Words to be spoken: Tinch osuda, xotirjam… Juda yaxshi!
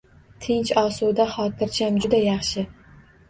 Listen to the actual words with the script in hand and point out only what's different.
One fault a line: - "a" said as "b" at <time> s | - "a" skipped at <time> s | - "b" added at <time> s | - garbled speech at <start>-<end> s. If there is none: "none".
none